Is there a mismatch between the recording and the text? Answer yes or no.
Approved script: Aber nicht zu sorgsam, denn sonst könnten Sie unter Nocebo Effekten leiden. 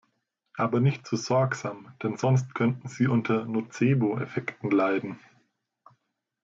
no